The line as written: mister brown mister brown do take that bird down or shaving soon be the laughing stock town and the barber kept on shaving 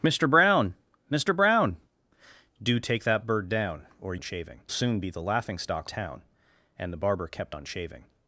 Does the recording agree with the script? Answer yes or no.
yes